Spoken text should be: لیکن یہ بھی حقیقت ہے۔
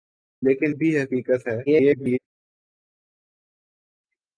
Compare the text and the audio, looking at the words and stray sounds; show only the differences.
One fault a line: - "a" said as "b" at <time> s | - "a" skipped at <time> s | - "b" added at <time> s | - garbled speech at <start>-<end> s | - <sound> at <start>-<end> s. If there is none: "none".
- "یہ" skipped at 0.8 s
- garbled speech at 1.7-2.2 s